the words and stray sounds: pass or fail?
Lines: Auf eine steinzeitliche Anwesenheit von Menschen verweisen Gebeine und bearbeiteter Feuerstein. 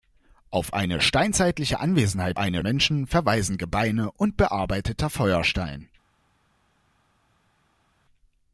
fail